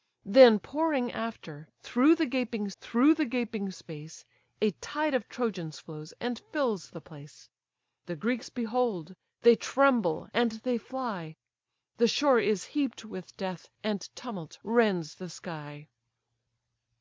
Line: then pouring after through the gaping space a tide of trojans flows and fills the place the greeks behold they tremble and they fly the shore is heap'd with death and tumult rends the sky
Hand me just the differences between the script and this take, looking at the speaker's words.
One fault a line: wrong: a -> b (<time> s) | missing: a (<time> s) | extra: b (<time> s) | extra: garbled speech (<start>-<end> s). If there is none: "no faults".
extra: through the gaping (2.8 s)